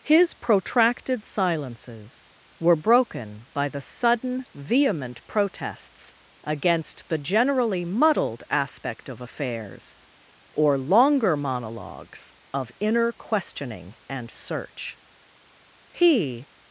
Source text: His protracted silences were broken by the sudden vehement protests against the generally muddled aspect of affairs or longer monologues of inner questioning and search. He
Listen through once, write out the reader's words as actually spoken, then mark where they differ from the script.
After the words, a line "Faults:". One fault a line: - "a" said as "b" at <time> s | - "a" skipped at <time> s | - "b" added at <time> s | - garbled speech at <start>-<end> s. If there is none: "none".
His protracted silences were broken by the sudden vehement protests against the generally muddled aspect of affairs or longer monologues of inner questioning and search. He
Faults:
none